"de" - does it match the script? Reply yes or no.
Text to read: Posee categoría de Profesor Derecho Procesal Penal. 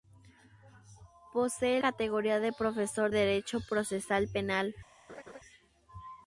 yes